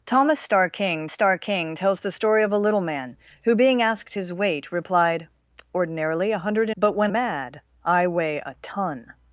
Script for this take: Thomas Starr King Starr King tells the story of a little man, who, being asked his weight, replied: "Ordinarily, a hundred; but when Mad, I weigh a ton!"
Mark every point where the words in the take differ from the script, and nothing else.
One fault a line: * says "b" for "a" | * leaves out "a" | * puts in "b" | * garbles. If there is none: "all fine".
all fine